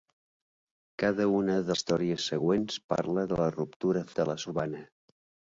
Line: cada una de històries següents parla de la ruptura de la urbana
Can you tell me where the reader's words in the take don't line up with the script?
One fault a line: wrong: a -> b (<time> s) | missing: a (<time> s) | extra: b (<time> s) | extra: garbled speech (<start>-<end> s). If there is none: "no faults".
no faults